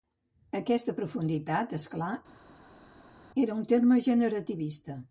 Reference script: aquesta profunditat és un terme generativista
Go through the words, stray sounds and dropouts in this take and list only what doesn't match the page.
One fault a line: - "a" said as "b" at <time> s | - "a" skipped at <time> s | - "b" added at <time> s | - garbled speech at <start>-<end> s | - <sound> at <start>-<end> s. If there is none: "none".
- "clar era" added at 2.0 s